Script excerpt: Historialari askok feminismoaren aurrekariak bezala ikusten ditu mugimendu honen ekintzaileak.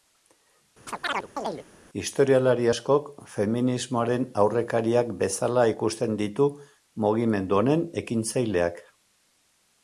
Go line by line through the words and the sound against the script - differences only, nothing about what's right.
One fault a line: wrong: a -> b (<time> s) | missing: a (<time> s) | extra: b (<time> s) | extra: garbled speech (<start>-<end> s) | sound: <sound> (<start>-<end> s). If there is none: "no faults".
sound: chirp (0.9-1.6 s)